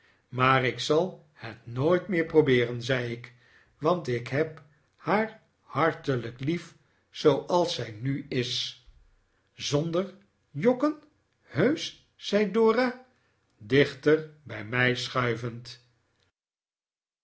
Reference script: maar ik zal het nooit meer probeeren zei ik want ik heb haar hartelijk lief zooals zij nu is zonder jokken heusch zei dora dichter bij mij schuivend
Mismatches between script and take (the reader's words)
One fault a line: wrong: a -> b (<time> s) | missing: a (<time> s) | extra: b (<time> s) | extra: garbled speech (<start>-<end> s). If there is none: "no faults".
no faults